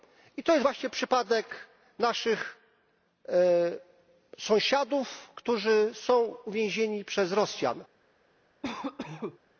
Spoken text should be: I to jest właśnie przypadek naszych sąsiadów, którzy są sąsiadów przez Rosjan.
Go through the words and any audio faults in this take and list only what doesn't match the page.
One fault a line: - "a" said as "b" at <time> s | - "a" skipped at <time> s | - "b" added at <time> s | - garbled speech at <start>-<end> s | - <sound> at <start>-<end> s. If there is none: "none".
- "sąsiadów" said as "uwięzieni" at 6.4 s
- cough at 8.6-9.4 s